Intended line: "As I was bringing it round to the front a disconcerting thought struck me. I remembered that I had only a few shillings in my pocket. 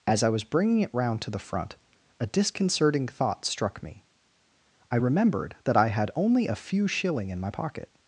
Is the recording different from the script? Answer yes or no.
yes